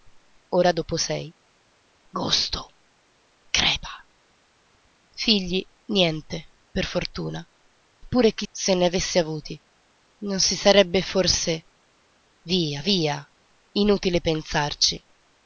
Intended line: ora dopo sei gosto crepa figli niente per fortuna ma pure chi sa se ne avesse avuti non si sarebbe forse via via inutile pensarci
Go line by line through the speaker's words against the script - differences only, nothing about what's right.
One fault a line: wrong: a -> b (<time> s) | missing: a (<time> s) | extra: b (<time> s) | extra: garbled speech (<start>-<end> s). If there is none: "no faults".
missing: ma (7.5 s)
missing: sa (8.5 s)